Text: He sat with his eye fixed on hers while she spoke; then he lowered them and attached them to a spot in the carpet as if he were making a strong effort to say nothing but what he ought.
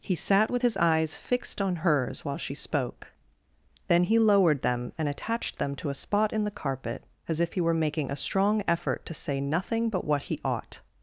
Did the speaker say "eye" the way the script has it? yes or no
no